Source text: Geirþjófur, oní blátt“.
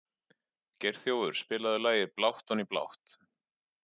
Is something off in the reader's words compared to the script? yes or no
yes